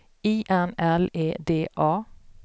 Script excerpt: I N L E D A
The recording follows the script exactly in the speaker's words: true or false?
true